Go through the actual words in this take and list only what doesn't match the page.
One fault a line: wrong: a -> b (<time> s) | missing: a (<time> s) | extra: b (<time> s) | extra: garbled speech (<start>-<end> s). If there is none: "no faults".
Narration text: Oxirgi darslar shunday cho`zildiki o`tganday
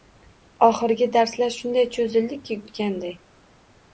no faults